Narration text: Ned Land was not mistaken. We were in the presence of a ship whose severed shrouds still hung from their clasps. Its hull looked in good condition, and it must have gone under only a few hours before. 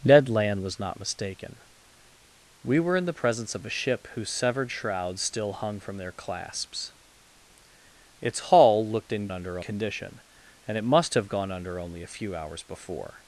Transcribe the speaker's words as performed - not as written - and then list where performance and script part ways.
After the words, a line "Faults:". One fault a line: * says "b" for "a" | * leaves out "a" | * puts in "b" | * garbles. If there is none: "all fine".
Ned Land was not mistaken. We were in the presence of a ship whose severed shrouds still hung from their clasps. Its hull looked in under condition, and it must have gone under only a few hours before.
Faults:
* says "under" for "good"